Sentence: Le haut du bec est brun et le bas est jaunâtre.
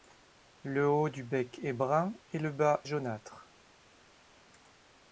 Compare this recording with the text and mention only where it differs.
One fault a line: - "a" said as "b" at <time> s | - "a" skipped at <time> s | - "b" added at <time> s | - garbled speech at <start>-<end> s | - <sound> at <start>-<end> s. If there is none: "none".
- "est" skipped at 2.8 s